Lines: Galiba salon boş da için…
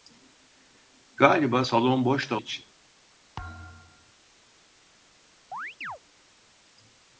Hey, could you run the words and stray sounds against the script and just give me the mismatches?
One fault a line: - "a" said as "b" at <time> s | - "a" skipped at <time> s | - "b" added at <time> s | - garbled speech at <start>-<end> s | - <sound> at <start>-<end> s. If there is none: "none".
- thud at 3.4-4.1 s
- chirp at 5.5-6.0 s